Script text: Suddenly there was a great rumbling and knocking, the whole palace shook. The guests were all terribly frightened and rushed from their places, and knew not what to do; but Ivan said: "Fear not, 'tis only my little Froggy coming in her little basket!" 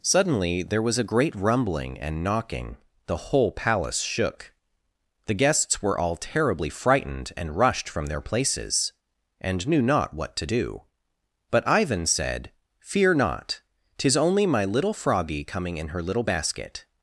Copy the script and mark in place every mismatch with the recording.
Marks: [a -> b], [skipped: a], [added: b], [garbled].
Suddenly there was a great rumbling and knocking, the whole palace shook. The guests were all terribly frightened and rushed from their places, and knew not what to do; but Ivan said: "Fear not, 'tis only my little Froggy coming in her little basket!"